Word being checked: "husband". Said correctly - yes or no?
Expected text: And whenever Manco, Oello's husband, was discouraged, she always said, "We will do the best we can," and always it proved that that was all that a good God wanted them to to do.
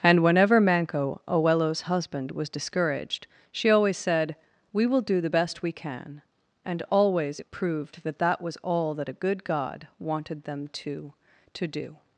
yes